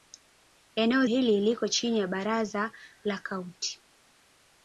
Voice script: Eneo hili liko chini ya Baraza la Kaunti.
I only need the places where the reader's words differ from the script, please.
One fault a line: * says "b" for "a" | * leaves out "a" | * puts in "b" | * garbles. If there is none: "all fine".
all fine